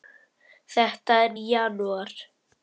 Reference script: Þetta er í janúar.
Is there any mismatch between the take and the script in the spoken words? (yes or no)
no